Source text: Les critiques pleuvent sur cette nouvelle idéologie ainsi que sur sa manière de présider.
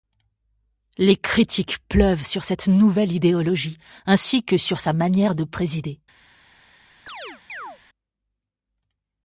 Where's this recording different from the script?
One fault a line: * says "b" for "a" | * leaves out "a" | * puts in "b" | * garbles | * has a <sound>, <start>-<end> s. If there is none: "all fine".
* has a chirp, 7.1-7.8 s